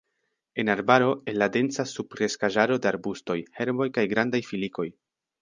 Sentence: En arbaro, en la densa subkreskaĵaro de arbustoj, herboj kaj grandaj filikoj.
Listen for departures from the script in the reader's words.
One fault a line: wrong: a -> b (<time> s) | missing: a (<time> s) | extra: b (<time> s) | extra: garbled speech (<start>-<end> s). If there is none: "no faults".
no faults